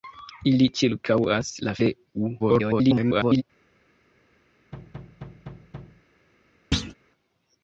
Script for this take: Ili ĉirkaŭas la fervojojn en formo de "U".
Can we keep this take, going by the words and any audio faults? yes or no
no